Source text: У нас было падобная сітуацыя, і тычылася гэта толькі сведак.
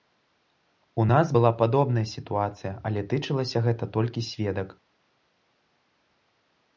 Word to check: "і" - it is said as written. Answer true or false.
false